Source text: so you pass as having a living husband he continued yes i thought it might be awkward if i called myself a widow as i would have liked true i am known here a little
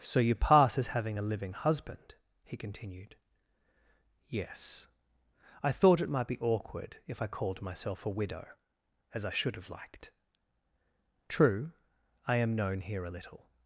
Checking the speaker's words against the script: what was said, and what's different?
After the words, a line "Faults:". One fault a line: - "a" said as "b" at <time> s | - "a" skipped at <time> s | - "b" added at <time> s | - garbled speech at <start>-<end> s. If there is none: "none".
so you pass as having a living husband he continued yes i thought it might be awkward if i called myself a widow as i should have liked true i am known here a little
Faults:
- "would" said as "should" at 9.3 s